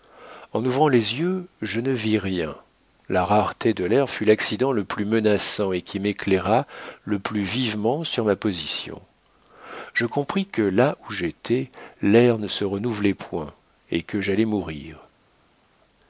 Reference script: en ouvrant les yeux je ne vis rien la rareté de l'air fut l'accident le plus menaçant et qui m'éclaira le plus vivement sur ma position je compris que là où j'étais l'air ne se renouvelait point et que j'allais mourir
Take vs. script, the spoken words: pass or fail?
pass